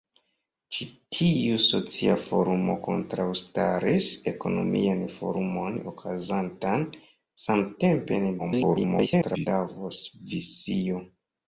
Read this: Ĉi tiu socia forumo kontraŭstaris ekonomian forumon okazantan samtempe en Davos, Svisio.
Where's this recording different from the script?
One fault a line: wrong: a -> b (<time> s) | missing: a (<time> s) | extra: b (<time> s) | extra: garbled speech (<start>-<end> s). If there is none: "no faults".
extra: garbled speech (8.4-9.5 s)